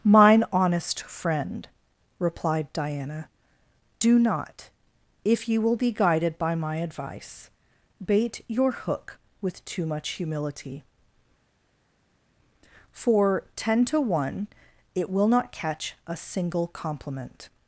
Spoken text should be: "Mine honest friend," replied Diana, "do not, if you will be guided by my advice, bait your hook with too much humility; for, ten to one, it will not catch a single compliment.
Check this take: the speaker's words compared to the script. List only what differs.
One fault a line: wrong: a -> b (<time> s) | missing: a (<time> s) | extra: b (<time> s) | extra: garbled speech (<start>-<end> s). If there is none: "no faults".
no faults